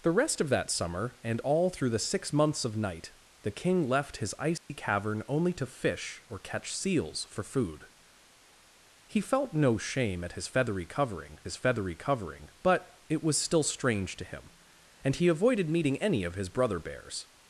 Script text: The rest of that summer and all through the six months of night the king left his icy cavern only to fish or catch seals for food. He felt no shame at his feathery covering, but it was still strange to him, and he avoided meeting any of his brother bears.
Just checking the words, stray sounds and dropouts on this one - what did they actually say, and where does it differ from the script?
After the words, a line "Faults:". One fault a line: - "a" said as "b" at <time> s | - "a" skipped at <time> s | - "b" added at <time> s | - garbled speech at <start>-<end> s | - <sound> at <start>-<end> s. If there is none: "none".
The rest of that summer and all through the six months of night the king left his icy cavern only to fish or catch seals for food. He felt no shame at his feathery covering his feathery covering, but it was still strange to him, and he avoided meeting any of his brother bears.
Faults:
- dropout at 4.6-4.7 s
- "his feathery covering" added at 11.4 s